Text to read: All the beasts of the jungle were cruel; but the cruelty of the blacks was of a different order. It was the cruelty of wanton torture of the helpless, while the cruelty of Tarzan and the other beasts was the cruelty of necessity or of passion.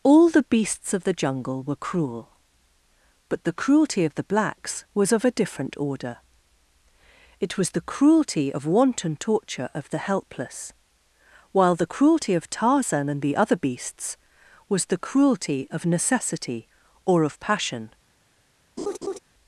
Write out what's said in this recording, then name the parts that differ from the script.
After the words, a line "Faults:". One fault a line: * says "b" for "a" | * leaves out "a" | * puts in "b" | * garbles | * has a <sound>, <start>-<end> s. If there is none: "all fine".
All the beasts of the jungle were cruel; but the cruelty of the blacks was of a different order. It was the cruelty of wanton torture of the helpless, while the cruelty of Tarzan and the other beasts was the cruelty of necessity or of passion.
Faults:
* has a laugh, 18.8-19.2 s